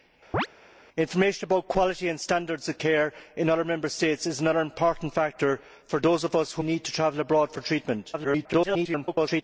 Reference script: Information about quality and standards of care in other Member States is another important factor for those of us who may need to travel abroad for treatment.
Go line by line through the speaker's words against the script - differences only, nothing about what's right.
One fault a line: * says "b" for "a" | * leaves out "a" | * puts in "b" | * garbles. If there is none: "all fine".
* leaves out "may"
* garbles